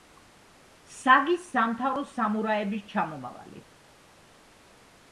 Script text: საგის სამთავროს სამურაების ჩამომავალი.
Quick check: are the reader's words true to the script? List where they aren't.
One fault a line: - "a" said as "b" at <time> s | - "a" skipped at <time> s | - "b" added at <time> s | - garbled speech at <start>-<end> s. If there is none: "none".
none